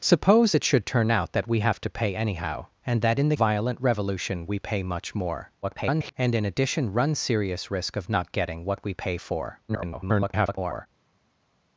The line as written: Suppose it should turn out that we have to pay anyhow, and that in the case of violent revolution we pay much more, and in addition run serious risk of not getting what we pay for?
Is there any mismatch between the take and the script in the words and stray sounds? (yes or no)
yes